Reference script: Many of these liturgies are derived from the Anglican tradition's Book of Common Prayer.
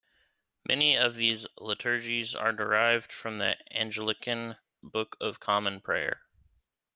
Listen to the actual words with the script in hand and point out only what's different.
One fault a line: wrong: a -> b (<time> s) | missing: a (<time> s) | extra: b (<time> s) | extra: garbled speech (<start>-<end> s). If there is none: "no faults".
missing: tradition's (4.6 s)